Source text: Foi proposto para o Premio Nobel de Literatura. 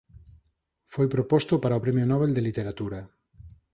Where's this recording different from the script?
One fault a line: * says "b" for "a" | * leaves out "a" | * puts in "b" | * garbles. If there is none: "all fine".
all fine